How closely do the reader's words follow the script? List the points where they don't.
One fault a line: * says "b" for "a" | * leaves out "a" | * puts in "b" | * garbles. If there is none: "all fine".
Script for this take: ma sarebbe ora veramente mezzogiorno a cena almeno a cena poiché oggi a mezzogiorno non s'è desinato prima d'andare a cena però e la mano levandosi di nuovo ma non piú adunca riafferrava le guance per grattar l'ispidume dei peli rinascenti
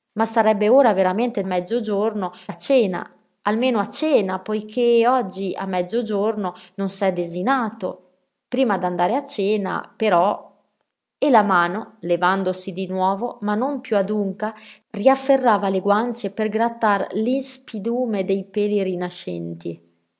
all fine